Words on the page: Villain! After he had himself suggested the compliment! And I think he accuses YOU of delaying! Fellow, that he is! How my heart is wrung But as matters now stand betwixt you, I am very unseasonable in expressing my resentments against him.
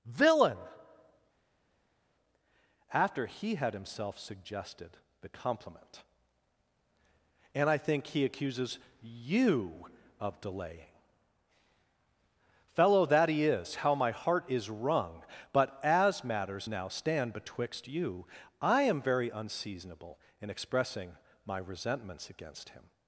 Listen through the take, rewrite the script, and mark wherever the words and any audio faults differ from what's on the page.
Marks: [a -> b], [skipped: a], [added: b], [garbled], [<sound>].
Villain! After he had himself suggested the compliment! And I think he accuses YOU of delaying! Fellow, that he is! How my heart is wrung But as matters now stand betwixt you, I am very unseasonable in expressing my resentments against him.